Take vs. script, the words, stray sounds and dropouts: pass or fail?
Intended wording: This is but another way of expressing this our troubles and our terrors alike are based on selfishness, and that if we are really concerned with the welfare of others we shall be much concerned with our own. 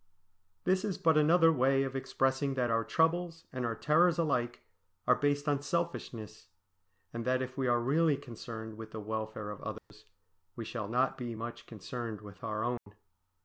fail